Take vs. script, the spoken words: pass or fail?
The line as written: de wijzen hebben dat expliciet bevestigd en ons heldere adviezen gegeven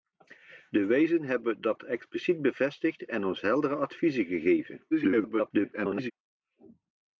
fail